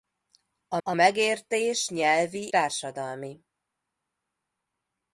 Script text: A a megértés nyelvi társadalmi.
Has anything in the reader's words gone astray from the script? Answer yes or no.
no